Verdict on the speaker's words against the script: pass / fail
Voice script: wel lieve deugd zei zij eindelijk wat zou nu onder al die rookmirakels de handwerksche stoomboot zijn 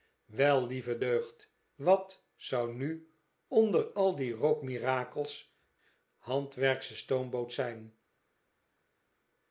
fail